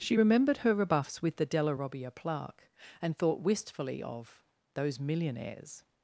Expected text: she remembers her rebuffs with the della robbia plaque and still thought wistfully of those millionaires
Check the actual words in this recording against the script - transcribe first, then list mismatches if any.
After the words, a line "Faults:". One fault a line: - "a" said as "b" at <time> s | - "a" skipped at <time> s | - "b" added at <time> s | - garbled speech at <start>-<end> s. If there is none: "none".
she remembered her rebuffs with the della robbia plaque and thought wistfully of those millionaires
Faults:
- "remembers" said as "remembered" at 0.1 s
- "still" skipped at 3.2 s